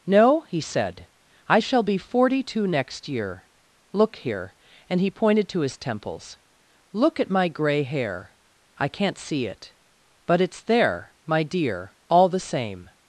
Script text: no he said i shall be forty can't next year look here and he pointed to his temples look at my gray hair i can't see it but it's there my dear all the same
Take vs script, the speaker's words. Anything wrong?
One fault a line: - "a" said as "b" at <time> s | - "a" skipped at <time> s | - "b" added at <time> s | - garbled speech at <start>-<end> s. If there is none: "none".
- "can't" said as "two" at 2.4 s